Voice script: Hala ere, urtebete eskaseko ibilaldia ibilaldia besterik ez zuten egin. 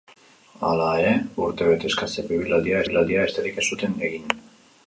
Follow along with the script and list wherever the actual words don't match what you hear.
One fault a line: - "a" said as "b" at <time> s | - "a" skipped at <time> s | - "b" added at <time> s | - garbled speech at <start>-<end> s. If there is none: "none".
none